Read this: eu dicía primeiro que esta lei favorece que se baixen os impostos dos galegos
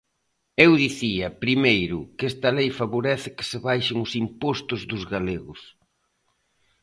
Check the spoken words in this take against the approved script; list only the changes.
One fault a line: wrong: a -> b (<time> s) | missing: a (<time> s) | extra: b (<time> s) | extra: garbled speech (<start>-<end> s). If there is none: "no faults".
no faults